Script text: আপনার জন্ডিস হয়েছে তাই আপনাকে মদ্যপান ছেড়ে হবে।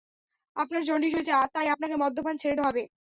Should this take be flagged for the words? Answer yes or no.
no